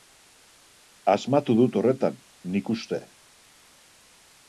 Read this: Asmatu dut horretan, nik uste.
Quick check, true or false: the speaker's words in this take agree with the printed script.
true